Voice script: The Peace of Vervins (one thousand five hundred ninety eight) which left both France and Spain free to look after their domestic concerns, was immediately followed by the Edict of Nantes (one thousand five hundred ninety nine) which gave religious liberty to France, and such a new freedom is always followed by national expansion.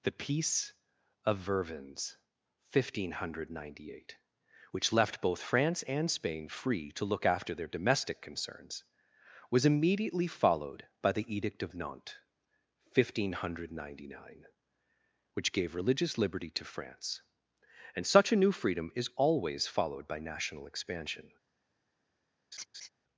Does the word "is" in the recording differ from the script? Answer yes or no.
no